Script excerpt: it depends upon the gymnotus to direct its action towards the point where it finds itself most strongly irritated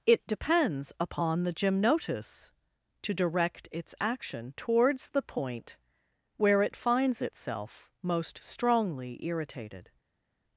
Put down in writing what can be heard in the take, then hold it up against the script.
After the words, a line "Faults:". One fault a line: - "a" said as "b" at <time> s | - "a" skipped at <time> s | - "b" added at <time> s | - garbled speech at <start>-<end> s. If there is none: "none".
it depends upon the gymnotus to direct its action towards the point where it finds itself most strongly irritated
Faults:
none